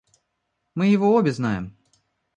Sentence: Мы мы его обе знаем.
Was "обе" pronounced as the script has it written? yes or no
yes